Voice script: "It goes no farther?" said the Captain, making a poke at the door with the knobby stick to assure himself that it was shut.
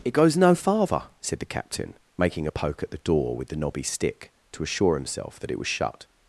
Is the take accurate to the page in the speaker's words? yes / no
yes